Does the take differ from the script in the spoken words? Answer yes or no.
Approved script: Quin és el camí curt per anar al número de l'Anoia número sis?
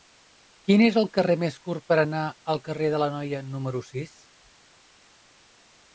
yes